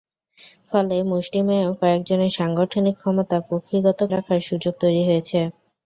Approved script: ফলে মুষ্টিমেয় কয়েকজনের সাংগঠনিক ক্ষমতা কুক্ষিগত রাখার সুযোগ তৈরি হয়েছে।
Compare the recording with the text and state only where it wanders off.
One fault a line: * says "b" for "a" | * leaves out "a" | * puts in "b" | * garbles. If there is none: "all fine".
all fine